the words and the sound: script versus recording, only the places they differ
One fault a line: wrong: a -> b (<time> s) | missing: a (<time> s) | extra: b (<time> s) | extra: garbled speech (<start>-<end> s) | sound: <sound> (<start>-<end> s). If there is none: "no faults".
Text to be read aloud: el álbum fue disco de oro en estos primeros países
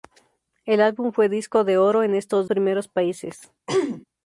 sound: throat clearing (3.7-4.1 s)